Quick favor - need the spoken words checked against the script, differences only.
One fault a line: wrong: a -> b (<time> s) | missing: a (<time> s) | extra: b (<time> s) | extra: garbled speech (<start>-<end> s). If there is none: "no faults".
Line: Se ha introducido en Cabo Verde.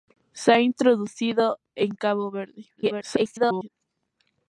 extra: garbled speech (2.8-3.7 s)